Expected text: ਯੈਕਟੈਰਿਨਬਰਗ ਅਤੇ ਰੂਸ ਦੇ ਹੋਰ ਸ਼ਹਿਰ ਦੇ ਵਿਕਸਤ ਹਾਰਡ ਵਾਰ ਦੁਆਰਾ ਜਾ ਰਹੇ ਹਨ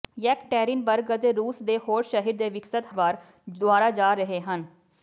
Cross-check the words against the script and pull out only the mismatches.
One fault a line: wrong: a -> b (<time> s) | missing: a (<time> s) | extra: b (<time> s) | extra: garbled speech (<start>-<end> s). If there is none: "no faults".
missing: ਹਾਰਡ (2.9 s)